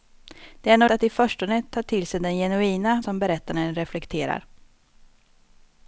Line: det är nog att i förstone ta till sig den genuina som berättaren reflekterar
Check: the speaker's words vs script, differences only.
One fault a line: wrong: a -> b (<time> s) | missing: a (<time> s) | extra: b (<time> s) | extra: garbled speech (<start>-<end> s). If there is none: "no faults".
no faults